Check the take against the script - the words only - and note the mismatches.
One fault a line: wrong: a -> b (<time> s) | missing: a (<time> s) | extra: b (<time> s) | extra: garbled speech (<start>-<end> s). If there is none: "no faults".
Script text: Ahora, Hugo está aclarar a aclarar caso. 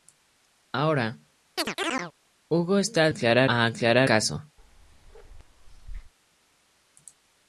no faults